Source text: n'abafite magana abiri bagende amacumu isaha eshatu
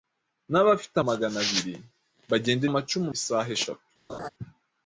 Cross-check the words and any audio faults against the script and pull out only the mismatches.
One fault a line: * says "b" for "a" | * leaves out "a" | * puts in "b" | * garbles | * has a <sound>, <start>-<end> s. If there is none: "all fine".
* has a laugh, 4.1-4.3 s